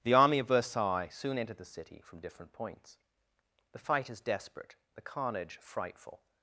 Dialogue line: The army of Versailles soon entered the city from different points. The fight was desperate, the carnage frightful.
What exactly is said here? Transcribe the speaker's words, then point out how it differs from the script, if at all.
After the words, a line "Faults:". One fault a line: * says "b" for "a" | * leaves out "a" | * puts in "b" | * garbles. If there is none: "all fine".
The army of Versailles soon entered the city from different points. The fight is desperate, the carnage frightful.
Faults:
* says "is" for "was"